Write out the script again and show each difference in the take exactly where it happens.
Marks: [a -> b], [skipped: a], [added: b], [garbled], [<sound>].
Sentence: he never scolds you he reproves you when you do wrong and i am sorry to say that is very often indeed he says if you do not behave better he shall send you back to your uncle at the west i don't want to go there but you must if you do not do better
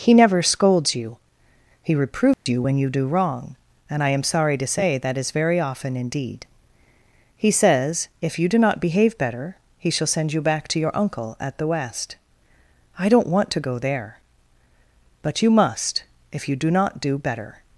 he never scolds you he reproves [dropout] you when you do wrong and i am sorry to say that is very often indeed he says if you do not behave better he shall send you back to your uncle at the west i don't want to go there but you must if you do not do better